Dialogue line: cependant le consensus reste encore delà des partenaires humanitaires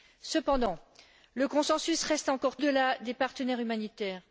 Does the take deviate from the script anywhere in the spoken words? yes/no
no